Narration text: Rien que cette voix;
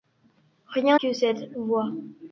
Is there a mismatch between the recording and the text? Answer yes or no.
no